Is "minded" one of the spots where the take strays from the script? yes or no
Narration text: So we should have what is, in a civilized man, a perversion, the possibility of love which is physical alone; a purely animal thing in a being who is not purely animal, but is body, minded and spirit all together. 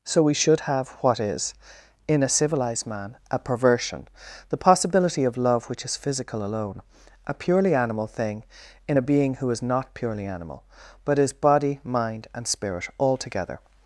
yes